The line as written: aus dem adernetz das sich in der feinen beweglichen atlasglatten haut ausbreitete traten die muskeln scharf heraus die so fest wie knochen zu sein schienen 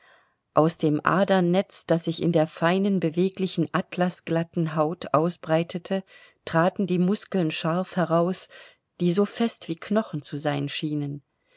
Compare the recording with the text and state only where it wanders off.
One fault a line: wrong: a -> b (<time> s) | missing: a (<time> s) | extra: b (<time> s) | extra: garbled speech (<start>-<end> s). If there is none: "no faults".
no faults